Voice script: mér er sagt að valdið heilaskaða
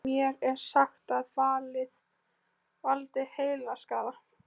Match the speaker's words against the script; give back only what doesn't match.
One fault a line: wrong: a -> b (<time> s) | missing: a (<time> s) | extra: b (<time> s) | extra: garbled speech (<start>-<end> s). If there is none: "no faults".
no faults